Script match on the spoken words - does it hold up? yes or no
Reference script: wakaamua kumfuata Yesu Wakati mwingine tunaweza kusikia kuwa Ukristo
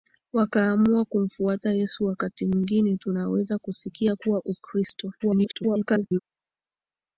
no